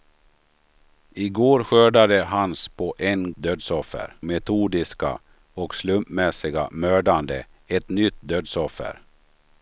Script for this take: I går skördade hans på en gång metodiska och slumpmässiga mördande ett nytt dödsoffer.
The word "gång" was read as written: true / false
false